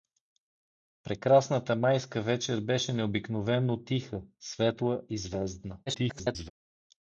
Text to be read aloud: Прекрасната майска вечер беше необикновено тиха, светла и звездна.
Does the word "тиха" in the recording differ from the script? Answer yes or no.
no